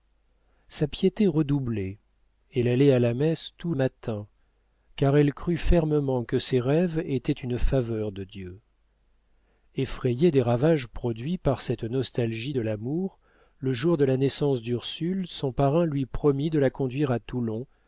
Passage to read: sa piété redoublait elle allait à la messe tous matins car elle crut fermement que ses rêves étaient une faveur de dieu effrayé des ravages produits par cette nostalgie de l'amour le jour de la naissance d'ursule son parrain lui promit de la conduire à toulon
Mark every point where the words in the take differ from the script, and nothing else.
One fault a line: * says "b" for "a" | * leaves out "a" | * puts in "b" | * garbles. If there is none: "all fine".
all fine